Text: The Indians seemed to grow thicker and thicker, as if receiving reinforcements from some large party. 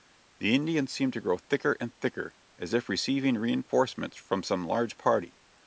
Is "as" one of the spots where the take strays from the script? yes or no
no